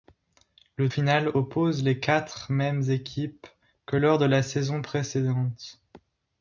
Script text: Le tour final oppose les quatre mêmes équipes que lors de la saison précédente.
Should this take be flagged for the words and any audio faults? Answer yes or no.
yes